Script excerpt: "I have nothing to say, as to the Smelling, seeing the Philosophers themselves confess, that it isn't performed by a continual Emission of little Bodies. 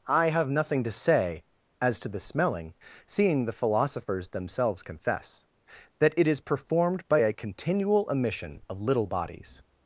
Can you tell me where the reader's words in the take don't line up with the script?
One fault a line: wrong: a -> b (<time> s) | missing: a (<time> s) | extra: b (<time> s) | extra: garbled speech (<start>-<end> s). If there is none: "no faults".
wrong: isn't -> is (6.3 s)